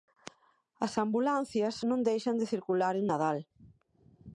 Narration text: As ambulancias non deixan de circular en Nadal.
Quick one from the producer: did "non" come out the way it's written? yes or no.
yes